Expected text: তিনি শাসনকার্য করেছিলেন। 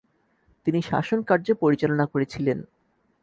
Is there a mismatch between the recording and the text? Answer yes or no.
yes